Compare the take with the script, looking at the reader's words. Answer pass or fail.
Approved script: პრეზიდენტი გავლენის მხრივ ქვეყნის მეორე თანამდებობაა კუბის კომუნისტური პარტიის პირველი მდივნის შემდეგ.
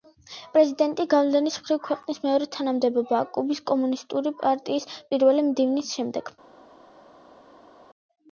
pass